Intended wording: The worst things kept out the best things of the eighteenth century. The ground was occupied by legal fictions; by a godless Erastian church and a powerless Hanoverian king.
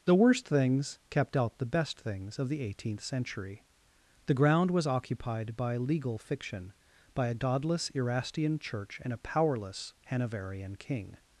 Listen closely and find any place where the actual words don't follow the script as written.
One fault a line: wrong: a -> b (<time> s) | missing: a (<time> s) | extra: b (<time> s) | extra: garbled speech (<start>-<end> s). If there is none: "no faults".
wrong: fictions -> fiction (6.2 s)